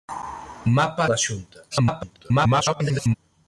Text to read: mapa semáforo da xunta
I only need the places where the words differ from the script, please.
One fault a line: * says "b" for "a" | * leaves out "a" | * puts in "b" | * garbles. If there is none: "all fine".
* leaves out "semáforo"
* garbles